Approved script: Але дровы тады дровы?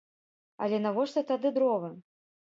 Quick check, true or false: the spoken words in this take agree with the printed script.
false